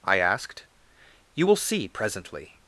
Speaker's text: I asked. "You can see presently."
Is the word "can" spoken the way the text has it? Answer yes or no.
no